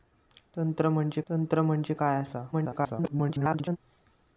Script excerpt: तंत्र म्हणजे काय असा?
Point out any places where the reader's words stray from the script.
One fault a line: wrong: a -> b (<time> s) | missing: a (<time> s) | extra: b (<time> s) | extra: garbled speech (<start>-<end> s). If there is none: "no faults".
extra: तंत्र म्हणजे (1.3 s)
extra: garbled speech (2.5-3.8 s)